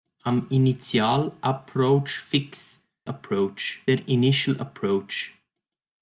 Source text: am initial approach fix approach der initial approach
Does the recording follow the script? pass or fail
pass